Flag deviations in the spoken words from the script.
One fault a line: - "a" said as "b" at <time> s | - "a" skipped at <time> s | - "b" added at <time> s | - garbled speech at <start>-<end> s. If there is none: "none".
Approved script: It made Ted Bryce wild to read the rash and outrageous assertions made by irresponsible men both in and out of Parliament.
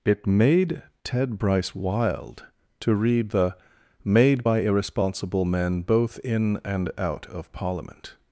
- "rash and outrageous assertions" skipped at 3.6 s